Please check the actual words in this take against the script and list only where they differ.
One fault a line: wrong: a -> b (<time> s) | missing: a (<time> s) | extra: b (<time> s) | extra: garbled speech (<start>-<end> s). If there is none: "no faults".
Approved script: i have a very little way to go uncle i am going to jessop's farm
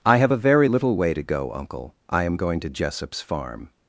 no faults